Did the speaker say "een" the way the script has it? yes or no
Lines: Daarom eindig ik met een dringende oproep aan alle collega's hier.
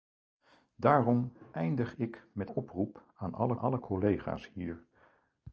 no